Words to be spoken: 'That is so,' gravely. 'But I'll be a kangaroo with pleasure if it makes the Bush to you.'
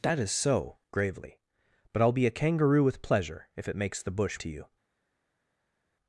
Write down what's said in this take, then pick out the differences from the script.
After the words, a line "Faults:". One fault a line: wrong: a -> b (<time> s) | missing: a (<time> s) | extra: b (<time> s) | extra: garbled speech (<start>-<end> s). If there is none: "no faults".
'That is so,' gravely. 'But I'll be a kangaroo with pleasure if it makes the Bush to you.'
Faults:
no faults